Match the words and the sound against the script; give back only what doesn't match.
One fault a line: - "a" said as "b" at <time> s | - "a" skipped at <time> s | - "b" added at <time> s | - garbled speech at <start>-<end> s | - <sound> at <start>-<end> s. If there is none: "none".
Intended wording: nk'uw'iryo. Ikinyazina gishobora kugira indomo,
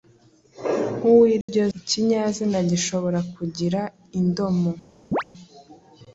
- dropout at 1.4-1.5 s
- chirp at 5.1-5.2 s